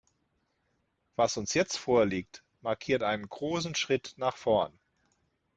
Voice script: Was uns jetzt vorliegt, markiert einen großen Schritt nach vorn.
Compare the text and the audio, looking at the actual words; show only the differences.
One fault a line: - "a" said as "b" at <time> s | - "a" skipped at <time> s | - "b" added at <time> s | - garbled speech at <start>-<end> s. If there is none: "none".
none